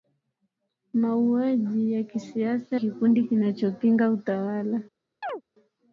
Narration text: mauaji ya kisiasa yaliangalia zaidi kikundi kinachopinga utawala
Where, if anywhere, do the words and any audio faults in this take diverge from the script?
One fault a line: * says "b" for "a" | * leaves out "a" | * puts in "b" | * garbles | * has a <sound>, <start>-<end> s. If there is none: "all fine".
* leaves out "yaliangalia zaidi"
* has a chirp, 5.2-5.4 s